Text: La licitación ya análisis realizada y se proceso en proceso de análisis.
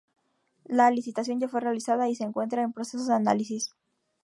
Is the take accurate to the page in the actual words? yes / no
no